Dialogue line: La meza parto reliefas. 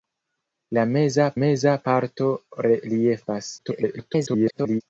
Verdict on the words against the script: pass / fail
fail